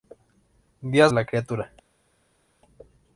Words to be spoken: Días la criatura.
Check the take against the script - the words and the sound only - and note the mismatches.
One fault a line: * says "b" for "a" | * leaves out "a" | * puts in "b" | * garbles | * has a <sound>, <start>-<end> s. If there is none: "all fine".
all fine